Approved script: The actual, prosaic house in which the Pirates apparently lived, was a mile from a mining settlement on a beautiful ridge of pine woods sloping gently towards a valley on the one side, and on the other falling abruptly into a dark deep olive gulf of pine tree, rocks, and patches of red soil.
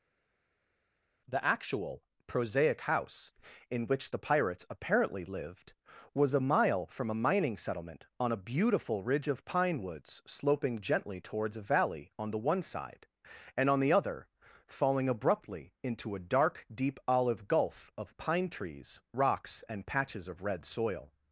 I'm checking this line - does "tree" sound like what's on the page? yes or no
no